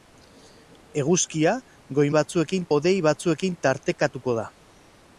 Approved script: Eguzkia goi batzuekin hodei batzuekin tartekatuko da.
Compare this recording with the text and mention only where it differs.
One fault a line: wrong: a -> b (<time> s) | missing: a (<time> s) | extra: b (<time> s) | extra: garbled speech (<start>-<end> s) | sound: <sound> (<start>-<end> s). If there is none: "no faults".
no faults